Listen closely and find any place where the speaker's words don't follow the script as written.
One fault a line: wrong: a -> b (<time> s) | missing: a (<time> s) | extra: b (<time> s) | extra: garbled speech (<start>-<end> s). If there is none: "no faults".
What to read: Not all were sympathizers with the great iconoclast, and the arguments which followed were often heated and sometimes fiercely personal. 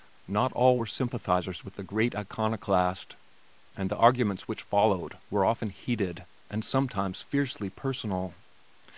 no faults